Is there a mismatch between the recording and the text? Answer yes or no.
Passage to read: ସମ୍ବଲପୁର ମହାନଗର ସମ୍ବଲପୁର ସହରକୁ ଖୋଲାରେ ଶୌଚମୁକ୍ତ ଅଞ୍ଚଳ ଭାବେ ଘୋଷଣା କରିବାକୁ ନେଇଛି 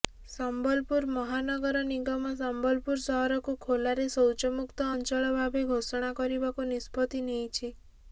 yes